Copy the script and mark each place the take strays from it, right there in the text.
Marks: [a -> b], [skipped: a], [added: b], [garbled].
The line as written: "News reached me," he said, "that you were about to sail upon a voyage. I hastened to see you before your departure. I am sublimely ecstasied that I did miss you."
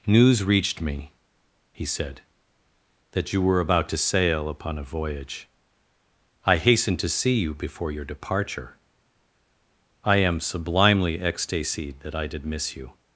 "News reached me," he said, "that you were about to sail upon a voyage. I hastened to see you before your departure. I am sublimely ecstasied that I did miss you."